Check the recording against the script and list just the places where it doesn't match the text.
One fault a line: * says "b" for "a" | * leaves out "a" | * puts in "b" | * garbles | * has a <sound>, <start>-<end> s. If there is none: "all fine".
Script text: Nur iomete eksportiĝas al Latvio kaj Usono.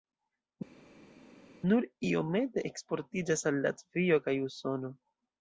all fine